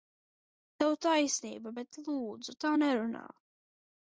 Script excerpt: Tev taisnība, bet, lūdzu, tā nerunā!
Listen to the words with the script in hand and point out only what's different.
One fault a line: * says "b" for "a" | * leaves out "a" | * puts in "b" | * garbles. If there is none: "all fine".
all fine